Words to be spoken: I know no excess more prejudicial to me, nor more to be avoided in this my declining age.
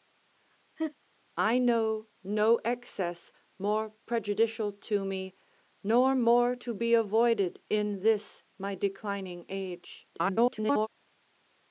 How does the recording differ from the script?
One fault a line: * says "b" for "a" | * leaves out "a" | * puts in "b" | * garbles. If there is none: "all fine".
* garbles